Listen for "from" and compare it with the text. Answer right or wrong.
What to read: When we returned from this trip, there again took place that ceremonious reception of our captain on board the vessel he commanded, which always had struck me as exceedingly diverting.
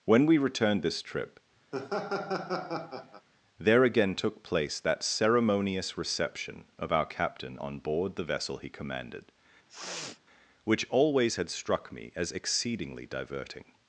wrong